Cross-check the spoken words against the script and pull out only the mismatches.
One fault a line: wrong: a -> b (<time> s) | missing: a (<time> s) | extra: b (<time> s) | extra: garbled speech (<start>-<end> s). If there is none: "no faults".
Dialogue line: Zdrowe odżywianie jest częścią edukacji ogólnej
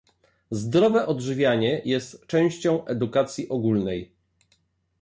no faults